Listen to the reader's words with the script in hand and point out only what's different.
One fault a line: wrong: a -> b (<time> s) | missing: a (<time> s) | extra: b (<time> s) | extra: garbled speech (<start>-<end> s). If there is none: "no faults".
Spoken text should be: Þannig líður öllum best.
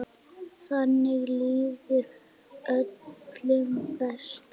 no faults